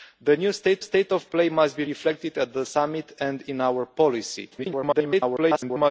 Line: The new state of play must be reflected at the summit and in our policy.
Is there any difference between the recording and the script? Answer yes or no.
yes